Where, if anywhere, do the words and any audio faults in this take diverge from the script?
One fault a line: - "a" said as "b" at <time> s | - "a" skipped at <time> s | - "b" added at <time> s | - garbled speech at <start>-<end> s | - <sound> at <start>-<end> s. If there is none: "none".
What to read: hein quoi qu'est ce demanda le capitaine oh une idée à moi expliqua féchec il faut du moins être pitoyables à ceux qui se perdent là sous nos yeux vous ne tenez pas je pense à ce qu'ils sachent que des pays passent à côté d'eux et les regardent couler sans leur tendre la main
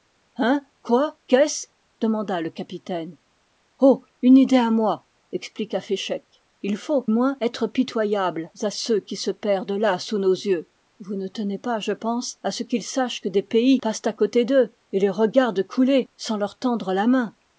- "du" skipped at 7.0 s